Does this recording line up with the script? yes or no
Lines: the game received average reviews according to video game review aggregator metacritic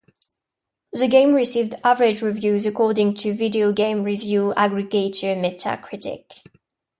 yes